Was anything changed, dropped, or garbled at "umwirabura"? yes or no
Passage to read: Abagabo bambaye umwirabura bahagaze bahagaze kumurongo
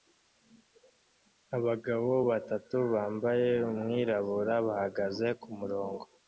no